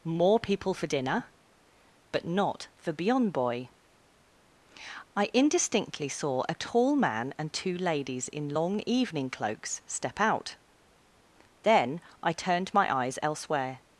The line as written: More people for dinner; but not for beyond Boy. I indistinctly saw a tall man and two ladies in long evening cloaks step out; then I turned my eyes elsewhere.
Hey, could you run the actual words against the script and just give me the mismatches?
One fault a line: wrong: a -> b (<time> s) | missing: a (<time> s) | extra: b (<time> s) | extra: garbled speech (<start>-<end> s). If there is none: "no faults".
no faults